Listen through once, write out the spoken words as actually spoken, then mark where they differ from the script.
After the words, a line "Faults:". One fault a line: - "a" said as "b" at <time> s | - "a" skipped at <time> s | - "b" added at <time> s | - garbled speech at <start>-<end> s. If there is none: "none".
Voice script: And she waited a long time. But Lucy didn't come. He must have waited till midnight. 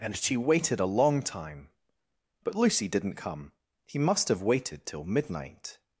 And she waited a long time. But Lucy didn't come. He must have waited till midnight.
Faults:
none